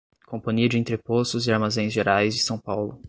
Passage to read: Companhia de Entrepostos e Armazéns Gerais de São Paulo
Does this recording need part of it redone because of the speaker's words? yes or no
yes